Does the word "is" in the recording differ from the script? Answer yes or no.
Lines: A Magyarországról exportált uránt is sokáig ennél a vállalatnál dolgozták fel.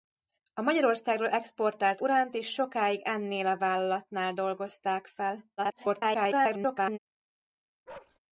no